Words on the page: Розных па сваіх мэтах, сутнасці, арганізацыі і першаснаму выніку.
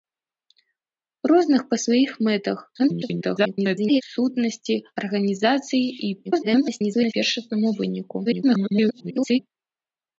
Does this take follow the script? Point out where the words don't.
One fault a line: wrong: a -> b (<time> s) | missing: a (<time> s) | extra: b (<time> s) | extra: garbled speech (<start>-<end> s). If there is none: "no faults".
extra: garbled speech (2.8-4.0 s)
extra: garbled speech (6.2-7.1 s)
extra: garbled speech (8.3-9.4 s)